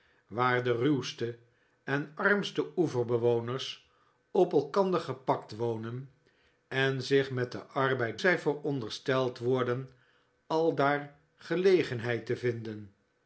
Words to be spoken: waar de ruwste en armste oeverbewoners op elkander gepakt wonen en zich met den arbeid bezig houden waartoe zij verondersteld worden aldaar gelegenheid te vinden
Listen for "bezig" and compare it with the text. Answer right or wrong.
wrong